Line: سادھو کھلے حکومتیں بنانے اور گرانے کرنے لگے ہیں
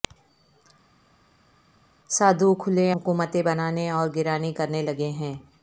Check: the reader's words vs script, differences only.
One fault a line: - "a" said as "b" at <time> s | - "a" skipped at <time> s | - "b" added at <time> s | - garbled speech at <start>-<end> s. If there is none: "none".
none